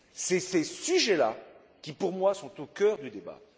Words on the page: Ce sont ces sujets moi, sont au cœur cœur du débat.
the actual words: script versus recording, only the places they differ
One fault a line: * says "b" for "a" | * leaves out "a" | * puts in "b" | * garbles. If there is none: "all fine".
* puts in "là qui pour"
* leaves out "cœur"